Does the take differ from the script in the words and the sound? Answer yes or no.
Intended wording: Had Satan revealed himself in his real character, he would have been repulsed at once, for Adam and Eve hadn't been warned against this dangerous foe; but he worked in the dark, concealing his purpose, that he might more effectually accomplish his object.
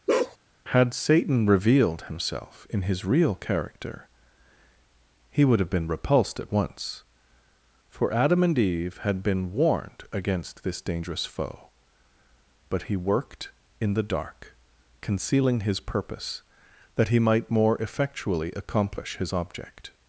yes